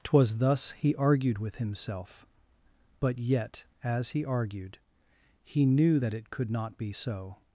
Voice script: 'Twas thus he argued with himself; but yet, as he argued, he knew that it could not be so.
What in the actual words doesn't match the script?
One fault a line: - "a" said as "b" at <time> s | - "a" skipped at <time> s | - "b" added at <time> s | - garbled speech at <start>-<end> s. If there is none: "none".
none